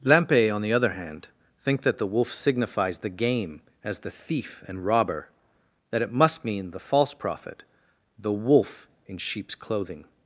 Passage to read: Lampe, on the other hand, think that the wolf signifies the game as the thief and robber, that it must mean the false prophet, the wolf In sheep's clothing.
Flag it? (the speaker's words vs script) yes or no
no